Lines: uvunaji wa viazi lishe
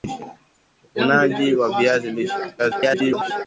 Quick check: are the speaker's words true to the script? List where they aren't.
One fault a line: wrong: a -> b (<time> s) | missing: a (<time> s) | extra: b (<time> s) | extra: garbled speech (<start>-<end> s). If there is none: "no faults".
extra: garbled speech (2.6-3.5 s)